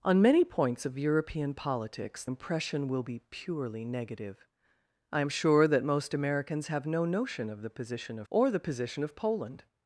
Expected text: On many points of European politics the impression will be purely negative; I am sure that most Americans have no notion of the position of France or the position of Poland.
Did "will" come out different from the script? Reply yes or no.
no